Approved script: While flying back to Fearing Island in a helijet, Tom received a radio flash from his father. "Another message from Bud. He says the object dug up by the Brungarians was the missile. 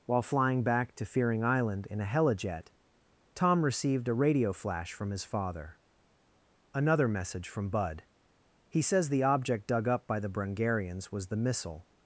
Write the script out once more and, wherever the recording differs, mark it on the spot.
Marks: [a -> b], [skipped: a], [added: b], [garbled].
While flying back to Fearing Island in a helijet, Tom received a radio flash from his father. "Another message from Bud. He says the object dug up by the Brungarians was the missile.